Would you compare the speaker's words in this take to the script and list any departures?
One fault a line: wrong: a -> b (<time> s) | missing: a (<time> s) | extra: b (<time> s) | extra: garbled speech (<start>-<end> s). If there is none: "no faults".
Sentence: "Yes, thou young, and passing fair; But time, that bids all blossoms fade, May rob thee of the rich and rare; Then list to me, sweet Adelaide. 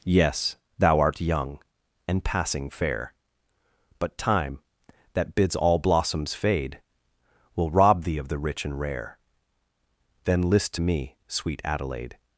extra: art (1.0 s)
wrong: May -> Will (7.5 s)